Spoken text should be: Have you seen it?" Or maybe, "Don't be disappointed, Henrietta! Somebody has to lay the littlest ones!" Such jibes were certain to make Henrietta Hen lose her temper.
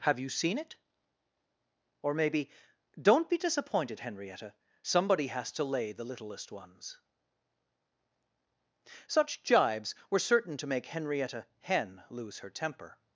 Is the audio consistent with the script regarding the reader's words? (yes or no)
yes